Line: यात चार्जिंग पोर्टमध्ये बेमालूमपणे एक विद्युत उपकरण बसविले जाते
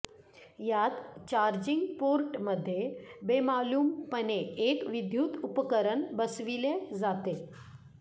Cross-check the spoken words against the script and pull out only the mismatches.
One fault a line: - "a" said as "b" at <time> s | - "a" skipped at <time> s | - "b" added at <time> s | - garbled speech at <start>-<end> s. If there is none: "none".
none